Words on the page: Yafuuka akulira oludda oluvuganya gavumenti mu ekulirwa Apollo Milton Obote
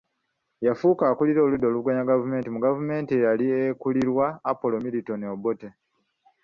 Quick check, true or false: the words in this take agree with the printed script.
false